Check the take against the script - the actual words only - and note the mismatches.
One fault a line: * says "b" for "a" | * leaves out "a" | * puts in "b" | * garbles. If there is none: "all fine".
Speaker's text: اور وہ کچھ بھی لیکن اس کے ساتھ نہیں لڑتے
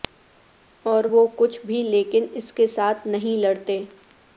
all fine